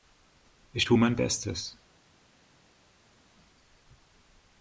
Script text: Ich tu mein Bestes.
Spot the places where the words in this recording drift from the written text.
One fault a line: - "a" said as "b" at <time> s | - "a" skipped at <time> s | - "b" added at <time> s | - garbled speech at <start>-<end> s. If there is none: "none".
none